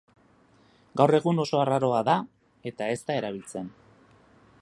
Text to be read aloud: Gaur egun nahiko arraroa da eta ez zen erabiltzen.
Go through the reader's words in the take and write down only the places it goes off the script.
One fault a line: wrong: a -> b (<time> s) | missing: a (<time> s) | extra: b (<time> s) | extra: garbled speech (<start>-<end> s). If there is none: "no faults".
wrong: nahiko -> oso (1.4 s)
wrong: zen -> da (3.1 s)